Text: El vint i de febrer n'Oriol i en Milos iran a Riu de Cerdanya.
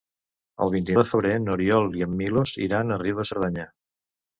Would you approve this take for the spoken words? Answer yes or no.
yes